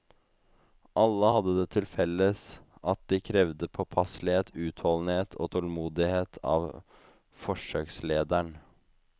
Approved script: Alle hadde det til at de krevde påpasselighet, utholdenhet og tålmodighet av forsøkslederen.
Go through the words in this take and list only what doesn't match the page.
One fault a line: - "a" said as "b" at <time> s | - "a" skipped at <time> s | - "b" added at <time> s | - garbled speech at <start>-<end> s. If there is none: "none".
- "felles" added at 2.0 s